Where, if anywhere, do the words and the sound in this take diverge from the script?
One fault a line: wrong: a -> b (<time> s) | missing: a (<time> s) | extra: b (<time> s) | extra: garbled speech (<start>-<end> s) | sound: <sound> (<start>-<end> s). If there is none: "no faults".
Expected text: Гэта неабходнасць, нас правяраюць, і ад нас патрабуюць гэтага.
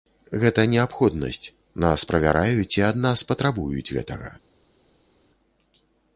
no faults